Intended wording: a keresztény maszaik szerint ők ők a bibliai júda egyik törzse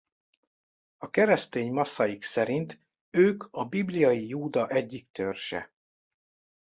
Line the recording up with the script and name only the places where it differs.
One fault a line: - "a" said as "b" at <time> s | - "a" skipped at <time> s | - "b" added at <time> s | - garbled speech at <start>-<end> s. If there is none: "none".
- "ők" skipped at 3.4 s